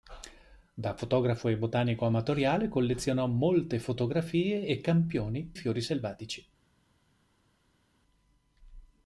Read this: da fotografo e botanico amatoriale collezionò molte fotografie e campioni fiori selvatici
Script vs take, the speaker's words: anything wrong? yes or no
no